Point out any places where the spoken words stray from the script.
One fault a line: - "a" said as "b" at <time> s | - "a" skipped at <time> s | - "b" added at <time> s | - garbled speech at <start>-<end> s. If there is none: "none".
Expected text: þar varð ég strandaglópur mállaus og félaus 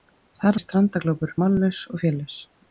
- "varð" skipped at 0.6 s